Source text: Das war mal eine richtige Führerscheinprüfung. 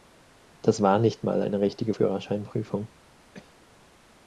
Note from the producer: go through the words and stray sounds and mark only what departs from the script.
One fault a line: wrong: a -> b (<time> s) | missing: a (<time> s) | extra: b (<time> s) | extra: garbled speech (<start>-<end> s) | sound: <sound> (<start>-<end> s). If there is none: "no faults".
extra: nicht (1.0 s)
sound: cough (3.3-3.6 s)